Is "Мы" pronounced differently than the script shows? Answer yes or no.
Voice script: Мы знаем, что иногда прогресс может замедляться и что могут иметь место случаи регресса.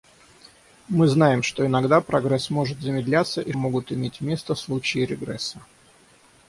no